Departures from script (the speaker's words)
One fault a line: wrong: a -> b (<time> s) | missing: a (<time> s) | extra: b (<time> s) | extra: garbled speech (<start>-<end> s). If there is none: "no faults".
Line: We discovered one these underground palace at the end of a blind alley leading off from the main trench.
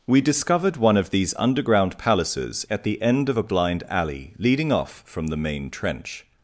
extra: of (1.0 s)
wrong: palace -> palaces (2.0 s)